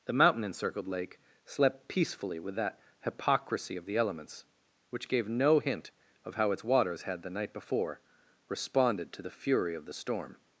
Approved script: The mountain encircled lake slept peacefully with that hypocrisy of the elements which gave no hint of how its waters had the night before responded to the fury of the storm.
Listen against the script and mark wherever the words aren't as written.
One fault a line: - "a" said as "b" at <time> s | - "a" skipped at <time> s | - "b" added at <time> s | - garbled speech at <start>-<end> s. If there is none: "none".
none